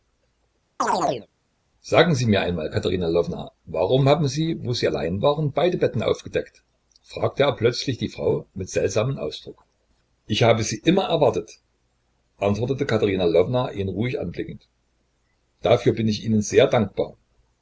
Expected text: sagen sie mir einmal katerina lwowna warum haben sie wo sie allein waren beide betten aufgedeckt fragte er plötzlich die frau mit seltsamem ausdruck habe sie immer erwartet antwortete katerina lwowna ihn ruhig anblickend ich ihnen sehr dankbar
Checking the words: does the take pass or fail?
fail